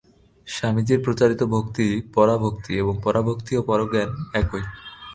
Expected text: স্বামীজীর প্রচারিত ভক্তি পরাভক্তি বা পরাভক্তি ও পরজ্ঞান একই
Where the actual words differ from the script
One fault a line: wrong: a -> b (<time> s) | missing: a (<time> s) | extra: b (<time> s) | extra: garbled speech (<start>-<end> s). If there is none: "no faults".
wrong: বা -> এবং (2.8 s)